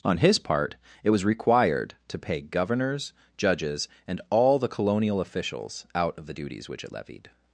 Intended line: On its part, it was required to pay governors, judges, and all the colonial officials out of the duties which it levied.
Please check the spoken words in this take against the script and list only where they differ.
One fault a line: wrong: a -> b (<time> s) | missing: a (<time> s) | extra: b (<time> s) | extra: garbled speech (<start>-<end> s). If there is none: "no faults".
wrong: its -> his (0.2 s)